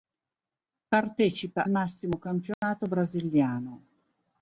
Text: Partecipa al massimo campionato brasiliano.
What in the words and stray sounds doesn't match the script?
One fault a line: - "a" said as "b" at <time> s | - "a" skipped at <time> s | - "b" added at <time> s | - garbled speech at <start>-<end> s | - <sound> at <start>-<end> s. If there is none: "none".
- "al" skipped at 1.7 s
- dropout at 2.5-2.6 s